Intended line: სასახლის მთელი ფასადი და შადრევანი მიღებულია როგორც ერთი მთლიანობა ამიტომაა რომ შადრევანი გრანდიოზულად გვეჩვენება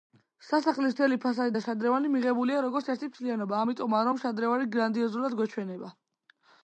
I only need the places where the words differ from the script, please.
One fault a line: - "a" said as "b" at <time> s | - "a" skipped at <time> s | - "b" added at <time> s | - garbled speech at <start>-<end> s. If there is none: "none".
none